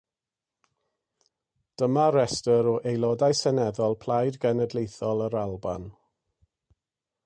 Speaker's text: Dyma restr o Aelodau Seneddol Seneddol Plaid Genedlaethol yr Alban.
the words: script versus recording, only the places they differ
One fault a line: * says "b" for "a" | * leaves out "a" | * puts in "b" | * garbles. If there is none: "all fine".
* leaves out "Seneddol"